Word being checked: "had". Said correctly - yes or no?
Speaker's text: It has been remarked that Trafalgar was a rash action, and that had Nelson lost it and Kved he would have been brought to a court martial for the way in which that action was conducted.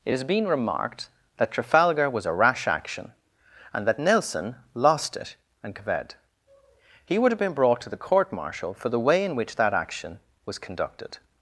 no